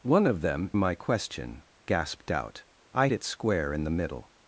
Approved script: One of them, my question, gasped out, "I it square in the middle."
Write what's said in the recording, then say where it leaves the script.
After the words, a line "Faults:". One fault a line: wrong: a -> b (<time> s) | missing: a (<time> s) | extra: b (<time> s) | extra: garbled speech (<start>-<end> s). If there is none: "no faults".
One of them, my question, gasped out, "I it square in the middle."
Faults:
no faults